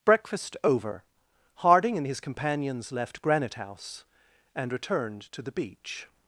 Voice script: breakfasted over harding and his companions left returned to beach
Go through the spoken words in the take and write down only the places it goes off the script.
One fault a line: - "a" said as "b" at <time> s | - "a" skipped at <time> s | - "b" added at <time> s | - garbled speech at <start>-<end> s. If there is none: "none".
- "breakfasted" said as "breakfast" at 0.0 s
- "granite house and" added at 3.2 s
- "the" added at 5.4 s